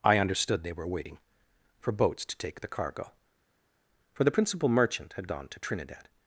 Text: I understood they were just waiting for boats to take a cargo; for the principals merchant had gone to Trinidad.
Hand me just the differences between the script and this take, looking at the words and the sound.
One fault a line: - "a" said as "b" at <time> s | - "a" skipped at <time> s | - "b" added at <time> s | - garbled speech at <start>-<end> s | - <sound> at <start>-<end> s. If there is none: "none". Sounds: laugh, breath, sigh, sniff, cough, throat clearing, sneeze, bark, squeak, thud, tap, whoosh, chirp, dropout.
- "just" skipped at 0.9 s
- "a" said as "the" at 2.6 s
- "principals" said as "principal" at 4.3 s